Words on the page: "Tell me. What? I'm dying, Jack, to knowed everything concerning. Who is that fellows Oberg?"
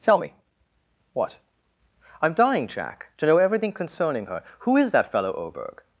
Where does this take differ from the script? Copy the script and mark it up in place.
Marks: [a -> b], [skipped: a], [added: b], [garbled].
"Tell me. What? I'm dying, Jack, to [knowed -> know] everything concerning. [added: her] Who is that [fellows -> fellow] Oberg?"